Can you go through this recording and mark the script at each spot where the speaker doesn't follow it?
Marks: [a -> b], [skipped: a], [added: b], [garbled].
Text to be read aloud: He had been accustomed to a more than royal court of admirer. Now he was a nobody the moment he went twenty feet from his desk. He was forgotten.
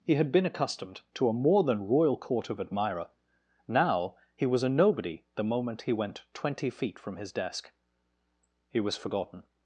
He had been accustomed to a more than royal court of admirer. Now he was a nobody the moment he went twenty feet from his desk. He was forgotten.